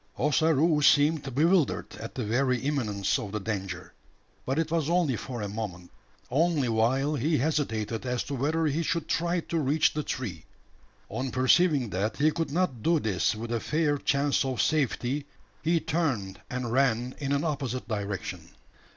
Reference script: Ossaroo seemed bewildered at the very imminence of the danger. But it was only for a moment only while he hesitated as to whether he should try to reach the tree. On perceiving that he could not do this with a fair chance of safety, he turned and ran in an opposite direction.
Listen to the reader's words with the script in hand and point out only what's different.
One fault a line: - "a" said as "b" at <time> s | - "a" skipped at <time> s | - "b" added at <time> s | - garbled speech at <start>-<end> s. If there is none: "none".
none